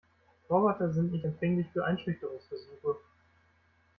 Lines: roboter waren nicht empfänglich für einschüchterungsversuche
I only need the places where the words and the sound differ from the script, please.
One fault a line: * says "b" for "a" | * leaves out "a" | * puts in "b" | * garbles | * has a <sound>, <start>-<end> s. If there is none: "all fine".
* says "sind" for "waren"